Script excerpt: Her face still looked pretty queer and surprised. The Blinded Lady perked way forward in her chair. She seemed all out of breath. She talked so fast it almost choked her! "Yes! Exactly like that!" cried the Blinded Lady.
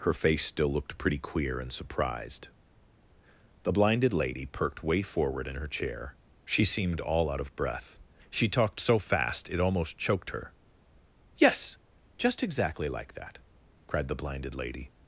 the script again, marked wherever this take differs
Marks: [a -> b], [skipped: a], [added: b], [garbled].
Her face still looked pretty queer and surprised. The Blinded Lady perked way forward in her chair. She seemed all out of breath. She talked so fast it almost choked her! "Yes! [added: Just] Exactly like that!" cried the Blinded Lady.